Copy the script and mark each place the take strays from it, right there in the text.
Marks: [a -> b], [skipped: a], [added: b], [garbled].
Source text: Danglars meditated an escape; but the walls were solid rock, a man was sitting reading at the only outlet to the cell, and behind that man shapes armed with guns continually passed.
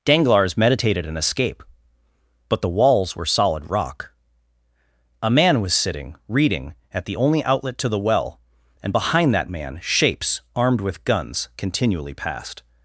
Danglars meditated an escape; but the walls were solid rock, a man was sitting reading at the only outlet to the [cell, -> well] and behind that man shapes armed with guns continually passed.